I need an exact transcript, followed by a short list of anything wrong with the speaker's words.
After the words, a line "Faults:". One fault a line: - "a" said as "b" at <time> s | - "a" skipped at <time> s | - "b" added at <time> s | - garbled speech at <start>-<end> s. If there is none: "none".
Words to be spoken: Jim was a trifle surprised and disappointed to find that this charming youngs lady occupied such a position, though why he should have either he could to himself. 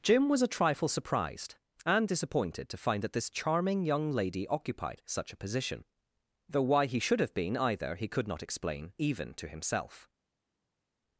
Jim was a trifle surprised and disappointed to find that this charming young lady occupied such a position, though why he should have been either he could not explain even to himself.
Faults:
- "youngs" said as "young" at 3.9 s
- "been" added at 7.3 s
- "not explain even" added at 8.3 s